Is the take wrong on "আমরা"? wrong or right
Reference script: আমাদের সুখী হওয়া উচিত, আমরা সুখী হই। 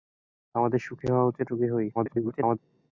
wrong